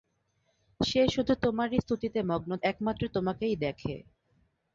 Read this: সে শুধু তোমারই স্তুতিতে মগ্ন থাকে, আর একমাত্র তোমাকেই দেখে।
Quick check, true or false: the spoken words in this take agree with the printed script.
false